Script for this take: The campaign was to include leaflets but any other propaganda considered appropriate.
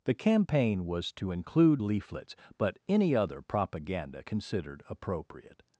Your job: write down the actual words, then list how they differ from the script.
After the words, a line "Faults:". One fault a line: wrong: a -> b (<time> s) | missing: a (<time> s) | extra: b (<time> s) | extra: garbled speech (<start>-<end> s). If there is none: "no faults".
The campaign was to include leaflets but any other propaganda considered appropriate.
Faults:
no faults